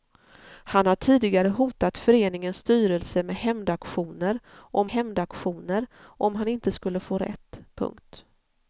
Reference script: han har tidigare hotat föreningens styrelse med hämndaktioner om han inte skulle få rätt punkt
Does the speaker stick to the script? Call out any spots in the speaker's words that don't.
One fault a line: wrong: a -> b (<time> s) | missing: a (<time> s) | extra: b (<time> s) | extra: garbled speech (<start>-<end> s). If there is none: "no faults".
extra: hämndaktioner om (4.9 s)